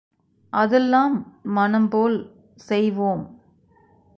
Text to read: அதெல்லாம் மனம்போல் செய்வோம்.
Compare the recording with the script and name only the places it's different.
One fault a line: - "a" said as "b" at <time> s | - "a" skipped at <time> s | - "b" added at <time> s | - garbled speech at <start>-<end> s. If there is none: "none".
none